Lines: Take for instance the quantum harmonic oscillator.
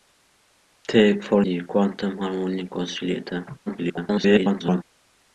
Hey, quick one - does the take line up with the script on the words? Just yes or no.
no